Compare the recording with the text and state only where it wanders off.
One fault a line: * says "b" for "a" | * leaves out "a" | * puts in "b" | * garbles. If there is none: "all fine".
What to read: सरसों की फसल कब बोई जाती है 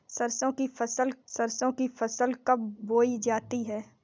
* puts in "सरसों की फसल"